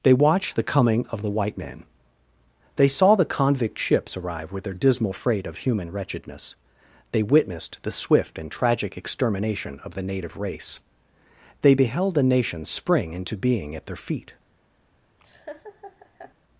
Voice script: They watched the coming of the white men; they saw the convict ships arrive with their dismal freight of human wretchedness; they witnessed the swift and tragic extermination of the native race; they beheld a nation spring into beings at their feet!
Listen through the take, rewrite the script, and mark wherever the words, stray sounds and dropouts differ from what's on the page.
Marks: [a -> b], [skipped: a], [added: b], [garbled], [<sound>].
They watched the coming of the white men; they saw the convict ships arrive with their dismal freight of human wretchedness; they witnessed the swift and tragic extermination of the native race; they beheld a nation spring into [beings -> being] at their feet! [laugh]